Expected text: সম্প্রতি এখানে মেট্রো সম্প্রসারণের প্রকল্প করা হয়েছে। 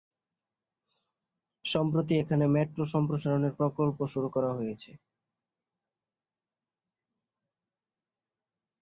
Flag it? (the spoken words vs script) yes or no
yes